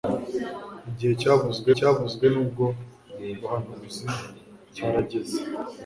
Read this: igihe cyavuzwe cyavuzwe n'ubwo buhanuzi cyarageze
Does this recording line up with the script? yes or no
yes